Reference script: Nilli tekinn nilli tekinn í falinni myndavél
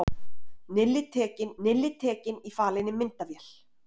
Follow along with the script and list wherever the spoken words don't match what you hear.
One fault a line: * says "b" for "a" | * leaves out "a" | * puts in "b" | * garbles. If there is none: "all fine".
all fine